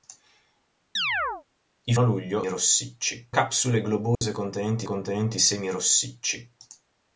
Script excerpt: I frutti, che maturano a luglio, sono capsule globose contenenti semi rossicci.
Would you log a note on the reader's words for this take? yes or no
yes